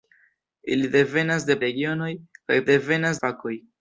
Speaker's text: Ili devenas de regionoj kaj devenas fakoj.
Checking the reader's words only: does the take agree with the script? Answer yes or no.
yes